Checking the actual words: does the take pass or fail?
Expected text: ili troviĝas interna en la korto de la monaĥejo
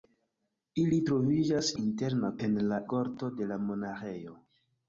pass